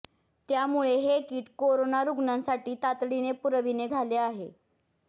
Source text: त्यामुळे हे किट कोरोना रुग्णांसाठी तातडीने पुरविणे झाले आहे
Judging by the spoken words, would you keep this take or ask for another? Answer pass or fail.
pass